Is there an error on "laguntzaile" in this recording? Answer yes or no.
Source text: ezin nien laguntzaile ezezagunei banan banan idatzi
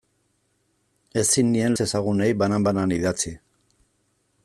yes